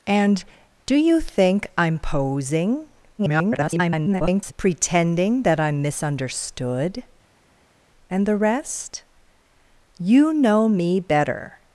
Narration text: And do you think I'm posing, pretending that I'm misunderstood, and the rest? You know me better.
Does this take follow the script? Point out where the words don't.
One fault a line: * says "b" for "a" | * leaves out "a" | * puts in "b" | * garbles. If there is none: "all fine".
* garbles